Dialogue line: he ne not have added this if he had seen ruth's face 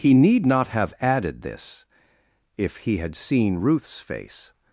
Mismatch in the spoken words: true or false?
true